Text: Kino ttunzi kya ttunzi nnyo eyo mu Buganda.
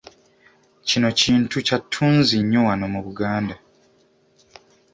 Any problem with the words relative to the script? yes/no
yes